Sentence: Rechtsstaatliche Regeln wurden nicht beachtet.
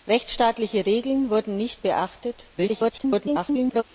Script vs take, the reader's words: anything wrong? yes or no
yes